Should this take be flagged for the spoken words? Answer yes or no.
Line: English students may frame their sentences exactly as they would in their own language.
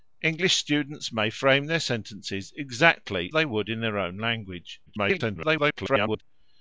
yes